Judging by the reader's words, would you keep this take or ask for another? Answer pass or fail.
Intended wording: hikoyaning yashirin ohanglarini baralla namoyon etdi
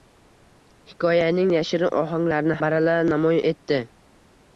pass